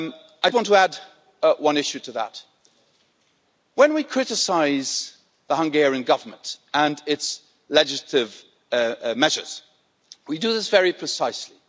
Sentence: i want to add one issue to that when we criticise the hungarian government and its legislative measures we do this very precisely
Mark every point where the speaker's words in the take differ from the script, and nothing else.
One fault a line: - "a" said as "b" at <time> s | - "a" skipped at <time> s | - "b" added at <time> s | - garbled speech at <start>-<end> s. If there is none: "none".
none